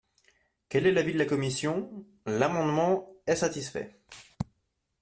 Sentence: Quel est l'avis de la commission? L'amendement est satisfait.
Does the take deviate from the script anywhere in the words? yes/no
no